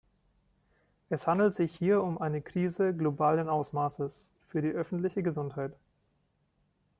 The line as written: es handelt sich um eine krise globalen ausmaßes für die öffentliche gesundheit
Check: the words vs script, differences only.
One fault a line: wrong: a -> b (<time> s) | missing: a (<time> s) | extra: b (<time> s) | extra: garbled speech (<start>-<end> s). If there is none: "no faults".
extra: hier (1.7 s)